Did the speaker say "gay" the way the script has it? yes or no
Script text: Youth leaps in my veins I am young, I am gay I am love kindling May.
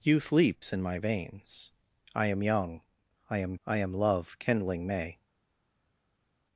no